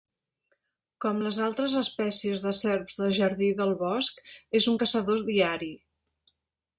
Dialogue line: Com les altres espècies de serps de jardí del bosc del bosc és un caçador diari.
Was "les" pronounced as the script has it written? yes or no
yes